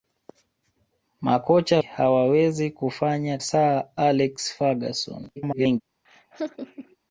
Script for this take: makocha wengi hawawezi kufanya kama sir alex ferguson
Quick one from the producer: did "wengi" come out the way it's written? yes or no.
no